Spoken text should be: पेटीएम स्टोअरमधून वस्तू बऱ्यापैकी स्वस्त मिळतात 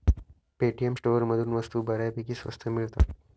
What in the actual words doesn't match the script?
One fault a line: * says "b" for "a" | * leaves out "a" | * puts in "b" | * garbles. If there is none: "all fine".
all fine